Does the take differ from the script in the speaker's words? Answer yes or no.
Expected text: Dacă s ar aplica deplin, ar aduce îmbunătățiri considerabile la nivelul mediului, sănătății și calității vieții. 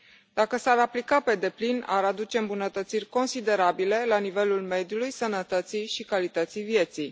yes